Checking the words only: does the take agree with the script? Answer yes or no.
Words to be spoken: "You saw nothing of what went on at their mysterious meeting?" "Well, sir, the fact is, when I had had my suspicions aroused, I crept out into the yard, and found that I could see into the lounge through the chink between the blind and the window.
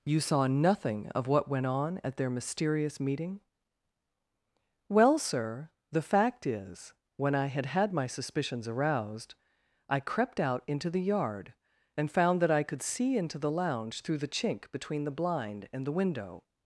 yes